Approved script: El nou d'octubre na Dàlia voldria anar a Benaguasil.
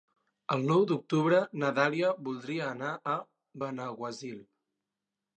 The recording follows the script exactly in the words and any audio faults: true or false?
true